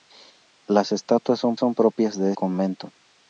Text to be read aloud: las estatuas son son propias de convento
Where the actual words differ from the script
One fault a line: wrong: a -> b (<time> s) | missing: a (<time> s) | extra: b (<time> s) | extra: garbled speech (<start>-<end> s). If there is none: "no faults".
no faults